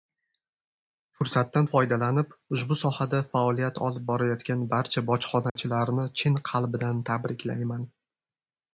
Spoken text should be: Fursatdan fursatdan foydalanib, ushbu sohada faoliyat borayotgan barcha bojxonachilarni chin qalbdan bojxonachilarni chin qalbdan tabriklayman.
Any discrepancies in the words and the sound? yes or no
yes